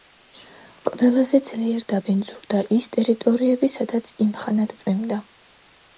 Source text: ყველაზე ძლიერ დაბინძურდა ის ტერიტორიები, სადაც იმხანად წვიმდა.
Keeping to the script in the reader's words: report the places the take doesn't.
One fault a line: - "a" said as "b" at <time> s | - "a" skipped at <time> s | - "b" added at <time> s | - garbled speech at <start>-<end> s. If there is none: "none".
none